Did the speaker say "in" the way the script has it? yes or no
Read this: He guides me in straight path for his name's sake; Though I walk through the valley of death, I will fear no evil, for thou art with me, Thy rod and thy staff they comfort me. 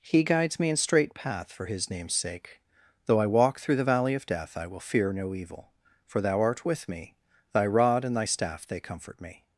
yes